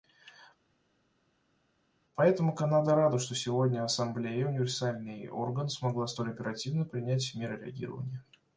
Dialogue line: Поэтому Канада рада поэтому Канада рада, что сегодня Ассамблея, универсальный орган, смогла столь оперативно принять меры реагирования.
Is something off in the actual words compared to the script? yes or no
yes